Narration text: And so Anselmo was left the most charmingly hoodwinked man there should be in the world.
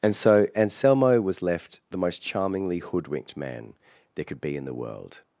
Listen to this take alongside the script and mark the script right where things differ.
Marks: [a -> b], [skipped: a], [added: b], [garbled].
And so Anselmo was left the most charmingly hoodwinked man there [should -> could] be in the world.